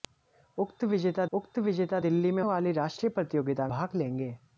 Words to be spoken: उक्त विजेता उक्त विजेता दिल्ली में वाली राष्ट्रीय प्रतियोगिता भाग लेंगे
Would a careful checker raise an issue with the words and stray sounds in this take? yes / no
no